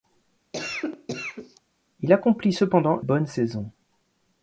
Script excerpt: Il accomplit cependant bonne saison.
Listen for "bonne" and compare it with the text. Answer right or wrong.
right